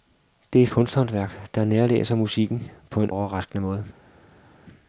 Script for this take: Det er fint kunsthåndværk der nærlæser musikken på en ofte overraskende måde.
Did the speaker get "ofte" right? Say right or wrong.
wrong